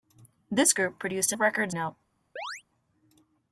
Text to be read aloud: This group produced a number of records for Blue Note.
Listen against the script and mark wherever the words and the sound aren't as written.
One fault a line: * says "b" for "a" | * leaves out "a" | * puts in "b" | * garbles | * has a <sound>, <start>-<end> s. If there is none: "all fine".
* leaves out "number"
* leaves out "for Blue"
* has a chirp, 2.4-2.6 s